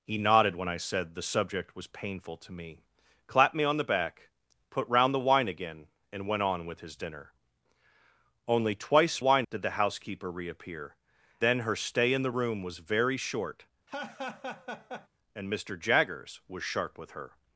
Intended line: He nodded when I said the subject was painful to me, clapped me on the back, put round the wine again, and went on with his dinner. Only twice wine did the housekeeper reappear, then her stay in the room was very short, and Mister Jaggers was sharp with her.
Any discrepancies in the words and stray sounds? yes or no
yes